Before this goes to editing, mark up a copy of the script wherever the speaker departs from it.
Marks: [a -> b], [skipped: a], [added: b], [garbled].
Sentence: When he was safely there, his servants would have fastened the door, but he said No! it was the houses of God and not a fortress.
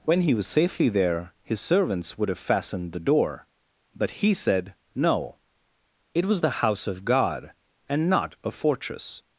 When he was safely there, his servants would have fastened the door, but he said No! it was the [houses -> house] of God and not a fortress.